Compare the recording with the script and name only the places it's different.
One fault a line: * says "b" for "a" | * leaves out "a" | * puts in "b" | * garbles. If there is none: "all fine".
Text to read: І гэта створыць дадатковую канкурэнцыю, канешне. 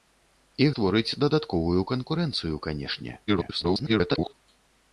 * leaves out "гэта"
* garbles